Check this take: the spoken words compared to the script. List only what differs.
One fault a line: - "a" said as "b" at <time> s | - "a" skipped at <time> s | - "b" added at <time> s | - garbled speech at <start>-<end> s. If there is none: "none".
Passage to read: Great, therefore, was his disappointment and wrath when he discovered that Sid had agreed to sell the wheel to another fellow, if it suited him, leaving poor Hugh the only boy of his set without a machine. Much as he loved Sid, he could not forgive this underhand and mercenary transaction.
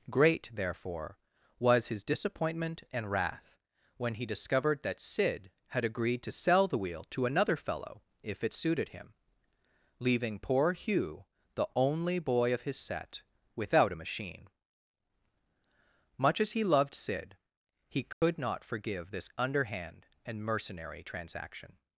none